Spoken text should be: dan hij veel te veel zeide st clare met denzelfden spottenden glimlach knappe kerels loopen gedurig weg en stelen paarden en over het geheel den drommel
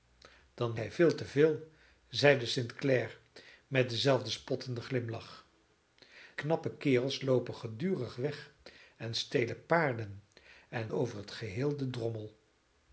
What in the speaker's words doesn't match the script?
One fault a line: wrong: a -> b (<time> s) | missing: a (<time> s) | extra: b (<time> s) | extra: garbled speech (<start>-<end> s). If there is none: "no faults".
no faults